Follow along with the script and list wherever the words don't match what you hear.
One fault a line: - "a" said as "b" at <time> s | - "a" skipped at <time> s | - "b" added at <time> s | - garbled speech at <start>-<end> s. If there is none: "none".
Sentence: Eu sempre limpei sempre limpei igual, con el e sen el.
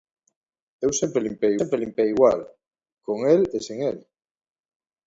none